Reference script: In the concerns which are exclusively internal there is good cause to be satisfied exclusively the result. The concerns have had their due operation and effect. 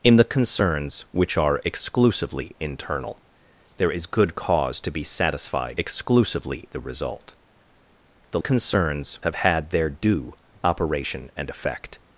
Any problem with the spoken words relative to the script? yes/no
no